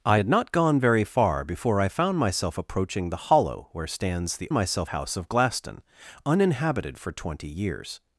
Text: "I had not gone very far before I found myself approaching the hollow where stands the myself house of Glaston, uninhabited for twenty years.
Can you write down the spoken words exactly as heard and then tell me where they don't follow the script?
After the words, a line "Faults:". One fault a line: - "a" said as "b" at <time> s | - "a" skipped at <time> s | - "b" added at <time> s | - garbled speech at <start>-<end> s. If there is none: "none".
"I had not gone very far before I found myself approaching the hollow where stands the myself house of Glaston, uninhabited for twenty years.
Faults:
none